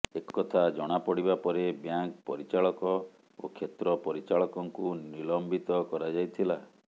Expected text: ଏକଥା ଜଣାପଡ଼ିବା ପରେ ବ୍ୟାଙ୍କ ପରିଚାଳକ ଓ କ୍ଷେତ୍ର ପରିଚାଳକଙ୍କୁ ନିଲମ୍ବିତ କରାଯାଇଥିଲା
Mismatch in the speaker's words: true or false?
false